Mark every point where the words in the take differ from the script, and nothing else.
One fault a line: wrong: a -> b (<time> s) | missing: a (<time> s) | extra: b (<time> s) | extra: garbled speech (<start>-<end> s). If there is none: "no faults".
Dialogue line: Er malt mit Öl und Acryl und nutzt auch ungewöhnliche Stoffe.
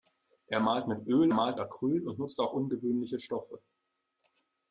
wrong: und -> malt (1.3 s)